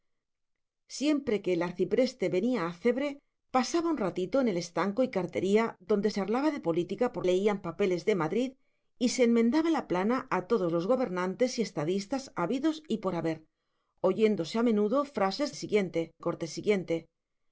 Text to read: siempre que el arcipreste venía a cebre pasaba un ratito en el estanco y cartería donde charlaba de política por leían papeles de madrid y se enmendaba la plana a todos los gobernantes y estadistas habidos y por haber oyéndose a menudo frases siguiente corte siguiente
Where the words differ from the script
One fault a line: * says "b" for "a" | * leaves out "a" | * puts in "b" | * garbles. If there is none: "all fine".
all fine